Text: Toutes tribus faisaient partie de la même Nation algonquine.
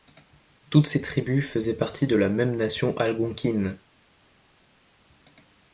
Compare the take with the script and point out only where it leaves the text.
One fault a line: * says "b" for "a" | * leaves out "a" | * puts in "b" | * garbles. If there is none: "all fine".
* puts in "ces"